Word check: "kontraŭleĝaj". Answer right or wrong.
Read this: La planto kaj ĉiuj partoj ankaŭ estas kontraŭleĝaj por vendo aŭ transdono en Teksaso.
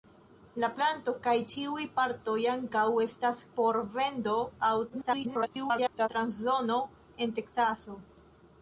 wrong